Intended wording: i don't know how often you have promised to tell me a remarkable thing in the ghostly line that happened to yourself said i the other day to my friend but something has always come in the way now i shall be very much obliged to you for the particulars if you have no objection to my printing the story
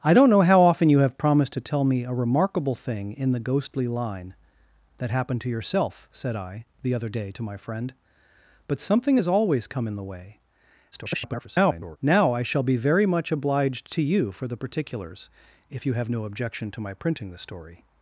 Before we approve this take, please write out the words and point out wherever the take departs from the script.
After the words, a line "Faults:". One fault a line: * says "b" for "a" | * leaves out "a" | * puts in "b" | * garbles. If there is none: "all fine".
i don't know how often you have promised to tell me a remarkable thing in the ghostly line that happened to yourself said i the other day to my friend but something has always come in the way [garbled] now i shall be very much obliged to you for the particulars if you have no objection to my printing the story
Faults:
* garbles